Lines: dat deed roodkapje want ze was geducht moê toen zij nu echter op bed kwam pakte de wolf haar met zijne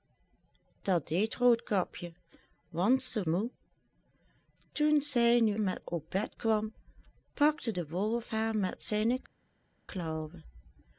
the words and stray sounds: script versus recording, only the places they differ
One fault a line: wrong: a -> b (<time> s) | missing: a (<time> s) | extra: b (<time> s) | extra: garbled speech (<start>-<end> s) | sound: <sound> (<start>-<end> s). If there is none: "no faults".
missing: was geducht (3.2 s)
wrong: echter -> met (5.6 s)